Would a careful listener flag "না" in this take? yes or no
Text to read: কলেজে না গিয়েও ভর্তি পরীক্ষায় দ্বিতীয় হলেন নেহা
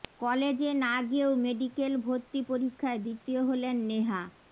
no